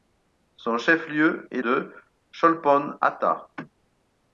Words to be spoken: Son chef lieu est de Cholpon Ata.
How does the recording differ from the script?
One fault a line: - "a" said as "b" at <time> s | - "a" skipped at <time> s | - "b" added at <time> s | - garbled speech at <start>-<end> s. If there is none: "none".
none